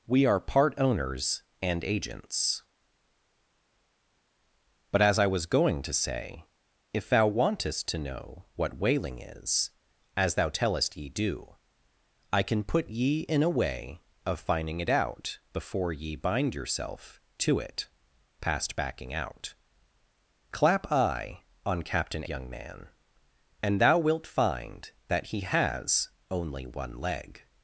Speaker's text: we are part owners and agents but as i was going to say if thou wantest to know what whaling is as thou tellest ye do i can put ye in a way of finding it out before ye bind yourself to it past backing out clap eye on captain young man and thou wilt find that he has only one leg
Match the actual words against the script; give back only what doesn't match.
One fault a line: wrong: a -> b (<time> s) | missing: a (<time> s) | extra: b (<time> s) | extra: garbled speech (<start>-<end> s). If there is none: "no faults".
no faults